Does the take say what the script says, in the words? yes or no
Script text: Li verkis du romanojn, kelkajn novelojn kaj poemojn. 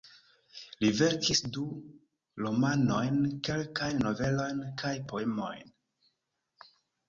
yes